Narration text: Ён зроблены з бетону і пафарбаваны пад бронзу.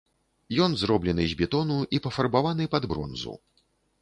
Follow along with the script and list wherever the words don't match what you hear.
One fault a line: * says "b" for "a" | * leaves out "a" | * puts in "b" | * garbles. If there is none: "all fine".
all fine